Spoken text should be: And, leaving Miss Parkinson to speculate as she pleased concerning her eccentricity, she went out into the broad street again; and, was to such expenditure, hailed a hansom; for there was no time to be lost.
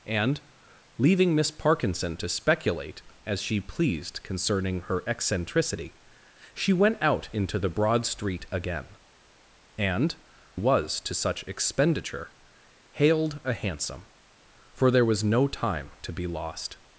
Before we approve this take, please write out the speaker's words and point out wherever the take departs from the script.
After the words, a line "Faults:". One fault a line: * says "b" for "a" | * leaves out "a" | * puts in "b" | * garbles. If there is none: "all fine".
And, leaving Miss Parkinson to speculate as she pleased concerning her eccentricity, she went out into the broad street again; and, was to such expenditure, hailed a hansom; for there was no time to be lost.
Faults:
all fine